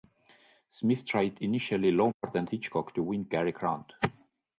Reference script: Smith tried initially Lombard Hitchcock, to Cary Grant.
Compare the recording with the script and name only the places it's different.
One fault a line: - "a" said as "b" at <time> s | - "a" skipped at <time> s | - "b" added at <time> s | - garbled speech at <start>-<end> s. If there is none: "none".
- "and" added at 2.4 s
- "win" added at 3.0 s